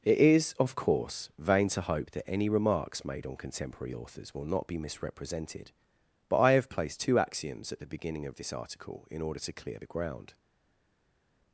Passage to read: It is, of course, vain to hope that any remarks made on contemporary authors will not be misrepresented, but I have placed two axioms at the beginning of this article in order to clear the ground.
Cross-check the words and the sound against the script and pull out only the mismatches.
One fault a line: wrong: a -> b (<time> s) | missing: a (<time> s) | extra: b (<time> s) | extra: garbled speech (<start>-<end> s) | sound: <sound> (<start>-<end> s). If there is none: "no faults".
no faults